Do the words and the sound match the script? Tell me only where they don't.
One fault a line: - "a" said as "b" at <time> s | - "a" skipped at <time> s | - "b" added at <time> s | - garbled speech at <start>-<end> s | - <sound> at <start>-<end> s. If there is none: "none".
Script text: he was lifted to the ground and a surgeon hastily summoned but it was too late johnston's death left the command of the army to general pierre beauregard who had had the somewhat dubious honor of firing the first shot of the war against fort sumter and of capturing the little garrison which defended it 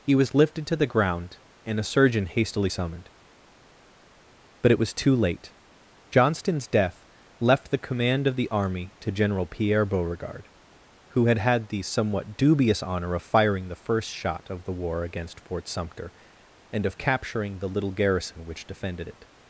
none